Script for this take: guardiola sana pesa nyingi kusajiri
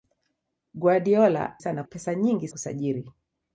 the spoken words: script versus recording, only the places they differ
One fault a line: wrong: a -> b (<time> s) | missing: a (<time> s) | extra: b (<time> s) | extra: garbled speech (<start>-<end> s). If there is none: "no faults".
no faults